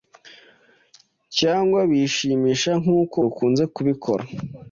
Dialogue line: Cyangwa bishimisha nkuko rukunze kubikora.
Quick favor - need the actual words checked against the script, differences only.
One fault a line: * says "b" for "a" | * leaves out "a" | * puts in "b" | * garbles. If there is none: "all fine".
all fine